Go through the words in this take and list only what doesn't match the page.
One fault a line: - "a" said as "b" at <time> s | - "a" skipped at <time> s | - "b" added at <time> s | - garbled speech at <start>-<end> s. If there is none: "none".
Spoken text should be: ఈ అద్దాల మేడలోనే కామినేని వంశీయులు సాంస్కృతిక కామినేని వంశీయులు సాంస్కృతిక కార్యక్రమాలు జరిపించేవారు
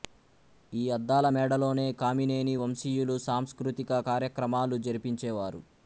- "కామినేని వంశీయులు సాంస్కృతిక" skipped at 4.0 s